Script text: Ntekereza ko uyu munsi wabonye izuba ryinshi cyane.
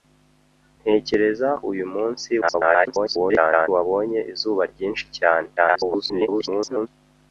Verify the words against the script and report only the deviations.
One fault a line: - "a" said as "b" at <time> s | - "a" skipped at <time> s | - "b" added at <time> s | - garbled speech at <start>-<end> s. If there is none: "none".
- "ko" skipped at 1.5 s
- garbled speech at 2.4-3.7 s
- garbled speech at 5.6-6.9 s